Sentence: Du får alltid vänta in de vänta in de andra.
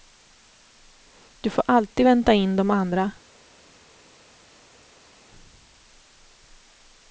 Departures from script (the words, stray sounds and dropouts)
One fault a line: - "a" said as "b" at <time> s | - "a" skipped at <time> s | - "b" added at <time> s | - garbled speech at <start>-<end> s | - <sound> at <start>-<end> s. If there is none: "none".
- "vänta in de" skipped at 2.7 s